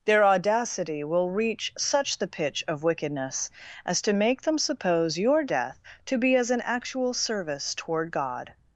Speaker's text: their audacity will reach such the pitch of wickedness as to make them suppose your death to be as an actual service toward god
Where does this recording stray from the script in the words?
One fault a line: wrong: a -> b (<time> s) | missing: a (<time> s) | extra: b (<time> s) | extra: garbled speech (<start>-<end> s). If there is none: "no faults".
no faults